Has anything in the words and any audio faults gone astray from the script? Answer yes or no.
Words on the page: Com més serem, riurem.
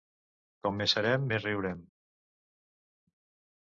yes